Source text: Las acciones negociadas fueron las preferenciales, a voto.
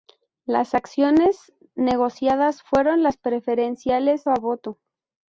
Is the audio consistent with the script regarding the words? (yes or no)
yes